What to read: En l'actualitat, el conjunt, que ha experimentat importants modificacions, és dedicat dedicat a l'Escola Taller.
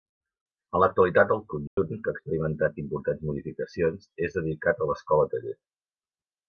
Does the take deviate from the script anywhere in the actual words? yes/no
yes